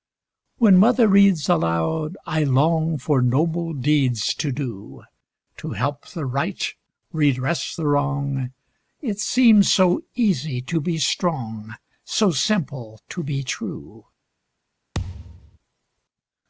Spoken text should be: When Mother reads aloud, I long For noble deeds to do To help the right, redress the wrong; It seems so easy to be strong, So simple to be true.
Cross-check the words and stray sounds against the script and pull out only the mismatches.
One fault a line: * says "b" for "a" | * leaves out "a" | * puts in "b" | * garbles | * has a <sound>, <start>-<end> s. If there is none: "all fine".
* has a thud, 14.9-15.6 s